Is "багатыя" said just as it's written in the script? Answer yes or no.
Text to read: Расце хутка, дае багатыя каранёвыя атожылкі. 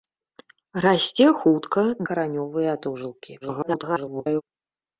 no